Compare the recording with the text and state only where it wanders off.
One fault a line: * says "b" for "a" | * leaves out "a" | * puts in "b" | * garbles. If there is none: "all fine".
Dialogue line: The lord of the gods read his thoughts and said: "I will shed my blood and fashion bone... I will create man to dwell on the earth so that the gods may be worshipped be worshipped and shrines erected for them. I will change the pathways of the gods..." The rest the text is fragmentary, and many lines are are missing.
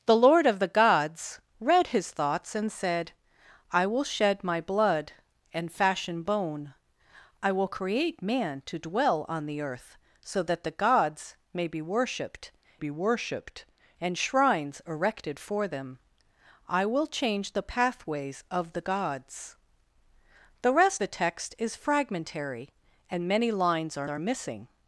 all fine